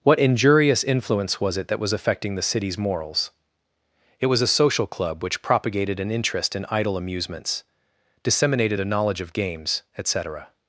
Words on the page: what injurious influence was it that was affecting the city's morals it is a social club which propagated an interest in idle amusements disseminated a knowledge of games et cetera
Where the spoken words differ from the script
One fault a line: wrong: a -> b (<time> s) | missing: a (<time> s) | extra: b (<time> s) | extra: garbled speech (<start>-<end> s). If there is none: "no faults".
wrong: is -> was (4.3 s)